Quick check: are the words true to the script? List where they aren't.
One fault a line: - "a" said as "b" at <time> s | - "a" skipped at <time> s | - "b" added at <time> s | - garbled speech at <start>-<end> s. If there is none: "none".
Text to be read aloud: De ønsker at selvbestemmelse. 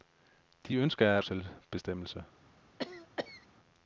none